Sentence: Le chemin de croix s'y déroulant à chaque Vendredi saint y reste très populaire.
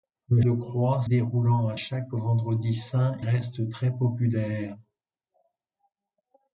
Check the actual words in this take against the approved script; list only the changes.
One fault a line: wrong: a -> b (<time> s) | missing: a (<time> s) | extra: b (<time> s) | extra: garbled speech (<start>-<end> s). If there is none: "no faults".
missing: chemin (0.4 s)
missing: s'y (1.0 s)
missing: y (3.1 s)